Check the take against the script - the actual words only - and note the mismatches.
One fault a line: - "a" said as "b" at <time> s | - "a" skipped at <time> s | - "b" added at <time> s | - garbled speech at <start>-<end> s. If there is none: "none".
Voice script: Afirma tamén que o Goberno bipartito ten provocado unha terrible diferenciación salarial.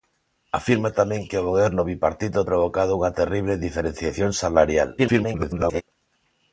- "ten" skipped at 2.4 s
- garbled speech at 5.0-5.8 s